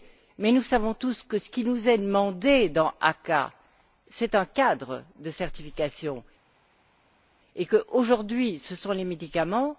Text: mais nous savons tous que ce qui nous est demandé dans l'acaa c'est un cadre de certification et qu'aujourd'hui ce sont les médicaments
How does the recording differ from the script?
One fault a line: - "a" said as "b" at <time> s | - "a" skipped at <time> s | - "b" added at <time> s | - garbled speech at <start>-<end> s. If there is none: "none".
none